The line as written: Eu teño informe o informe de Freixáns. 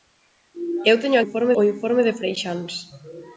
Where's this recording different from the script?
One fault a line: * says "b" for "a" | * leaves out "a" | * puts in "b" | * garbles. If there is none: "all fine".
all fine